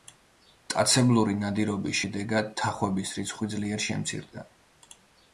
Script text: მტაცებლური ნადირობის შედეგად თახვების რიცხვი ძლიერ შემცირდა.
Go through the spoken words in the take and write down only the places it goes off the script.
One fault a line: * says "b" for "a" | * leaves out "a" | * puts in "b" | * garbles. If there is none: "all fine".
all fine